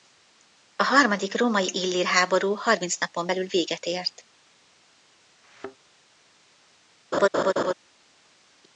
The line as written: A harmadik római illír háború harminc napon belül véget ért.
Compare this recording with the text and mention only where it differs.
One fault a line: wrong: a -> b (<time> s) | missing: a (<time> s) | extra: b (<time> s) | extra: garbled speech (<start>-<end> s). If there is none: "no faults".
no faults